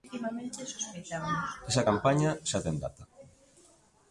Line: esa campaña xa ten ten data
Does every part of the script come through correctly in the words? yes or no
no